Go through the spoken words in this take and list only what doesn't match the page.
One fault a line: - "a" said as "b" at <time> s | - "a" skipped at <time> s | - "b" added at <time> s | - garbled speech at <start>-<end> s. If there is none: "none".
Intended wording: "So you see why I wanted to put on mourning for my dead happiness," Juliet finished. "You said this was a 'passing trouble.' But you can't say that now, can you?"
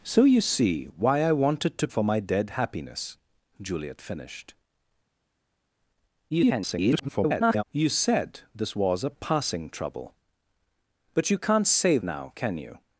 - "put on mourning" skipped at 1.9 s
- garbled speech at 6.3-7.6 s
- "that" skipped at 12.0 s